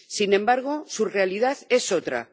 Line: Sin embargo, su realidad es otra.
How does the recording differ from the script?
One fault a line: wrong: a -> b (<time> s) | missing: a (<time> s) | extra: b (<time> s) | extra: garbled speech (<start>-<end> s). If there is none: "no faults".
no faults